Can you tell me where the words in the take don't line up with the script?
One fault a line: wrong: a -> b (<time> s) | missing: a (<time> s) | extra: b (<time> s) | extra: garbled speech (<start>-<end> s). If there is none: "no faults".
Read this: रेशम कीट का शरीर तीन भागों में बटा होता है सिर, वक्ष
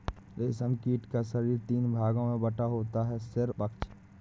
no faults